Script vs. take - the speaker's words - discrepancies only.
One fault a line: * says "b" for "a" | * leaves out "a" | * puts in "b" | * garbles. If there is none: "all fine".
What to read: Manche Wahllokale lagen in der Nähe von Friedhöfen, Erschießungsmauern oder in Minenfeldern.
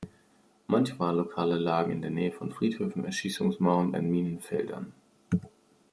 * leaves out "oder"